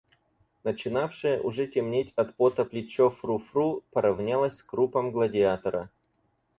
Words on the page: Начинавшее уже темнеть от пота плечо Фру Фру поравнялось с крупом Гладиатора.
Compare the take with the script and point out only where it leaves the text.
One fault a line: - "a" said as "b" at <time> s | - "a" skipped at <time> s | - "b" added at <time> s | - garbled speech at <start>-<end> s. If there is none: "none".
none